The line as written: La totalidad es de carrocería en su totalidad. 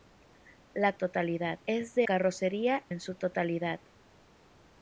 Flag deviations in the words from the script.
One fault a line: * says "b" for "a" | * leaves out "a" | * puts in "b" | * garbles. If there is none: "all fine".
all fine